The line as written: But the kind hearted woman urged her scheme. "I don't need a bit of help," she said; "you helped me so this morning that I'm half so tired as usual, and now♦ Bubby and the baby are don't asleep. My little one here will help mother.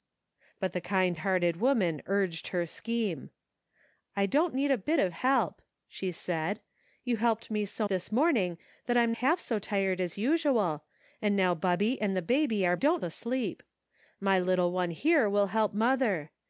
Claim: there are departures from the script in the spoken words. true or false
false